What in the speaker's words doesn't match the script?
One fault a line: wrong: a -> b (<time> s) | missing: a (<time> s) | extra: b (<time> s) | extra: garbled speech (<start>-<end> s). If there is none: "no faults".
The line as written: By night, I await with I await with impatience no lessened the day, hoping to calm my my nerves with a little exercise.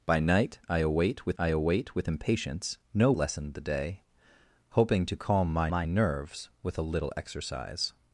no faults